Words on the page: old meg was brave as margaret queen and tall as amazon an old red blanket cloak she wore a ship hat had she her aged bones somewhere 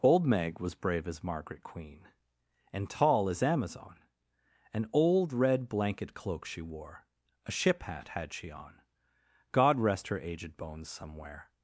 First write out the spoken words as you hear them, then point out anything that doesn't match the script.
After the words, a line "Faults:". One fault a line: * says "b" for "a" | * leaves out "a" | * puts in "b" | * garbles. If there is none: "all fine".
old meg was brave as margaret queen and tall as amazon an old red blanket cloak she wore a ship hat had she on god rest her aged bones somewhere
Faults:
* puts in "on god rest"